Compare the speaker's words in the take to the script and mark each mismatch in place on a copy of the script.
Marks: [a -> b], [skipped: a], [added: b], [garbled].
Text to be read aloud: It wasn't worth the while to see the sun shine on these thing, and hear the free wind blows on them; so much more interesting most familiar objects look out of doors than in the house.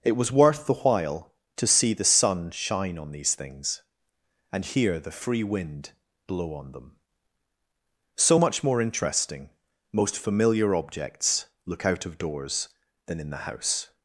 It [wasn't -> was] worth the while to see the sun shine on these [thing, -> things] and hear the free wind [blows -> blow] on them; so much more interesting most familiar objects look out of doors than in the house.